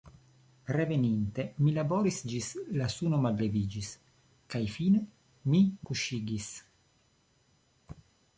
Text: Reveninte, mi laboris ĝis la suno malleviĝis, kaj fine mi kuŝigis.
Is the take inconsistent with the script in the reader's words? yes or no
no